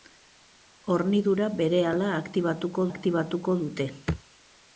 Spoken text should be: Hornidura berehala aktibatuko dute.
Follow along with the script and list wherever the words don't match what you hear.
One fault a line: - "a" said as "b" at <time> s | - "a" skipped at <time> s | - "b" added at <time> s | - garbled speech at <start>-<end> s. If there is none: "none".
- "aktibatuko" added at 2.9 s